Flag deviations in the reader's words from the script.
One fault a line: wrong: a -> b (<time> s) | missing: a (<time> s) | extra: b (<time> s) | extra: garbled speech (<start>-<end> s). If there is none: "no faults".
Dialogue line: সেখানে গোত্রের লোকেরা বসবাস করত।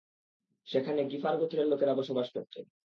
extra: গিফার (1.1 s)